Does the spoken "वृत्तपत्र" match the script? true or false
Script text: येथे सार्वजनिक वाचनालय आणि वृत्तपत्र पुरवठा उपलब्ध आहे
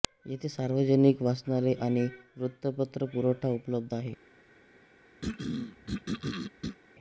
true